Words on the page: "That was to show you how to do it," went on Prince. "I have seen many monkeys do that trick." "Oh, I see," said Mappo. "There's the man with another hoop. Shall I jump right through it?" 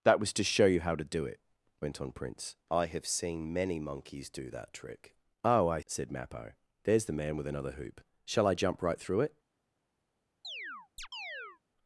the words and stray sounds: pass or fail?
fail